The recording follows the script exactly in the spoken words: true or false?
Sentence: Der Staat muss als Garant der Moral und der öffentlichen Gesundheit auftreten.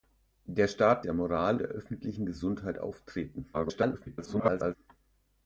false